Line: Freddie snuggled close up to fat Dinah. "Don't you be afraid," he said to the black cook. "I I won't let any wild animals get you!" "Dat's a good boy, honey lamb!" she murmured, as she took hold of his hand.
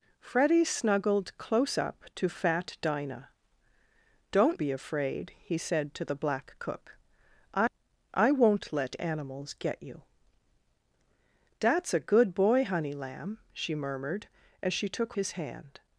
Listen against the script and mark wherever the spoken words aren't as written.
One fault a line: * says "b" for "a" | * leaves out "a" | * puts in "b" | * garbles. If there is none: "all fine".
* leaves out "you"
* leaves out "any wild"
* leaves out "hold of"